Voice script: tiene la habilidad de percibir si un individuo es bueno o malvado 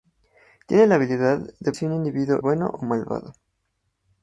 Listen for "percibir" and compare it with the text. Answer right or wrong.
wrong